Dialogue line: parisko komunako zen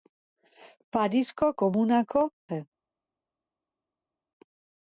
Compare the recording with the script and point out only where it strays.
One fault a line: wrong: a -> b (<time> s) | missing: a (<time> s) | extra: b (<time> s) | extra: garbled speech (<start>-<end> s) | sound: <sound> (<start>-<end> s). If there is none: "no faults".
no faults